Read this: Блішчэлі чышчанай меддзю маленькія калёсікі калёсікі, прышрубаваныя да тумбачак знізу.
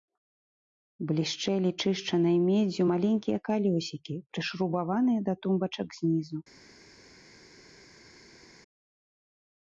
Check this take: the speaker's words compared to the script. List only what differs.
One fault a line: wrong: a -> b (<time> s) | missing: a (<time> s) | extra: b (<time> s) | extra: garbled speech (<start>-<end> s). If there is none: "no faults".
missing: калёсікі (4.2 s)